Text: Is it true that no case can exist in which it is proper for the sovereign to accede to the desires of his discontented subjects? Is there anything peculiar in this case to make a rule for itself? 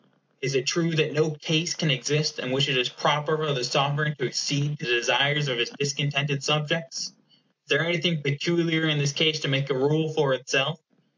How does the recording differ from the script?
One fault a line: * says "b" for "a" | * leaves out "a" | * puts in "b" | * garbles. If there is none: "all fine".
* leaves out "the"